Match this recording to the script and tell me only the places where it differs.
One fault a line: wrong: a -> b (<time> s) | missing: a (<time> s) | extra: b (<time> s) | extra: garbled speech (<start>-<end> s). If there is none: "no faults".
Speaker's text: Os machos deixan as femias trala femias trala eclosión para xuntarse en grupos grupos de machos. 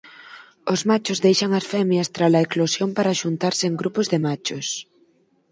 missing: femias trala (2.4 s)
missing: grupos (4.0 s)